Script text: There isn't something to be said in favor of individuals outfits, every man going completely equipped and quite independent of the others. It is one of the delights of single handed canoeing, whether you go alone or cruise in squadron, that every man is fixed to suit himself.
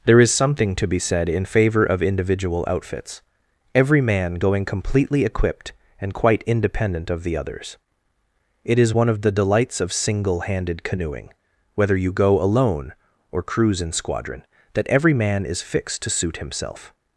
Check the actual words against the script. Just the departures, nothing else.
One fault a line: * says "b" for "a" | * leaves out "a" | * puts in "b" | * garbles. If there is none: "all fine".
* says "is" for "isn't"
* says "individual" for "individuals"